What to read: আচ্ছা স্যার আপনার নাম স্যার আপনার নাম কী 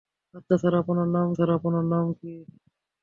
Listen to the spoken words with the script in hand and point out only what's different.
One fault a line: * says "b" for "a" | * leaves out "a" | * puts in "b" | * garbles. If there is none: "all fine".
all fine